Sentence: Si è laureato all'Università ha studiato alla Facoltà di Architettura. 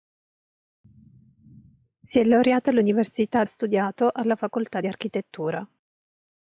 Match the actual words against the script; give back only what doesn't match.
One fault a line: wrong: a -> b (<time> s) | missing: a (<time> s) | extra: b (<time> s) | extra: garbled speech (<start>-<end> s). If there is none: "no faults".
no faults